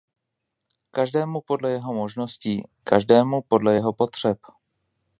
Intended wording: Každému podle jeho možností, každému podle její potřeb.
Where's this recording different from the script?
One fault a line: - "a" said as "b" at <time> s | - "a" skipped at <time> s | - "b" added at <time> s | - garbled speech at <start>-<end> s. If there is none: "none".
- "její" said as "jeho" at 3.7 s